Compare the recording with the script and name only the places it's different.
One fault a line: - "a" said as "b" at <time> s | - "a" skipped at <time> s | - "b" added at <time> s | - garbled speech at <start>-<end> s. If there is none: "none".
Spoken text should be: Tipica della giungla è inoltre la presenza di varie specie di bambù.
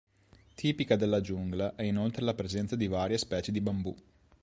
none